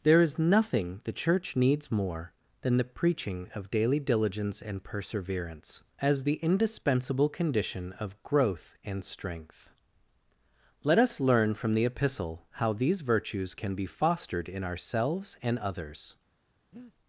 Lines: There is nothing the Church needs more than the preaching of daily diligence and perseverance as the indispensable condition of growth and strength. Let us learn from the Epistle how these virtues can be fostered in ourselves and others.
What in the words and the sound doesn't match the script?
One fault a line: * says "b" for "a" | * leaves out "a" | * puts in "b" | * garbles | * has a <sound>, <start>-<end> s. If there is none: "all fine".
* has a breath, 16.7-16.9 s